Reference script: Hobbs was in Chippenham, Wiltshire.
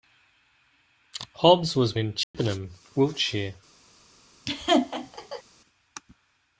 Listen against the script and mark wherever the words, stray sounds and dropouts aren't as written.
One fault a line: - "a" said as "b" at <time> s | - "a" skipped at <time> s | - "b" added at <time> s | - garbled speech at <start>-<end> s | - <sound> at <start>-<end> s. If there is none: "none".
- dropout at 2.2-2.3 s
- laugh at 4.5-5.4 s